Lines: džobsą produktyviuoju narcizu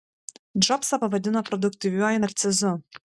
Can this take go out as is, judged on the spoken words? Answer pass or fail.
fail